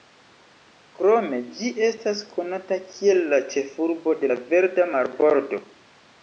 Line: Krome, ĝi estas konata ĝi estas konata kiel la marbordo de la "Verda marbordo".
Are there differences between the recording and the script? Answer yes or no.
yes